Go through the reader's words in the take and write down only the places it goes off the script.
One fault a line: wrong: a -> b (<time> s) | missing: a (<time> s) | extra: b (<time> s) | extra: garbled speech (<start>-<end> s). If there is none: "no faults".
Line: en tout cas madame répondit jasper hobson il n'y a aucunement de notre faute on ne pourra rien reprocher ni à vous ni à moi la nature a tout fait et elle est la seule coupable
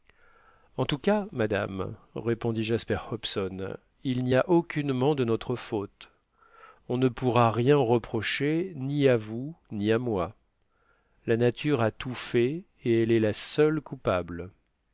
no faults